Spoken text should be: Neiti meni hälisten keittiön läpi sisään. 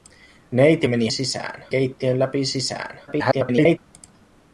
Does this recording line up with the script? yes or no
no